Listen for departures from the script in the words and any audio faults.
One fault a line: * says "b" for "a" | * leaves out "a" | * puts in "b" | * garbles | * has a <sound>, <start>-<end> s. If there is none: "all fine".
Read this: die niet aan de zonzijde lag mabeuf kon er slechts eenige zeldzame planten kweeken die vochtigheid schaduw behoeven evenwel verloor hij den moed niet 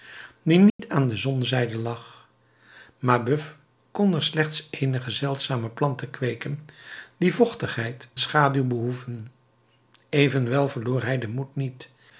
* has a dropout, 0.7-0.8 s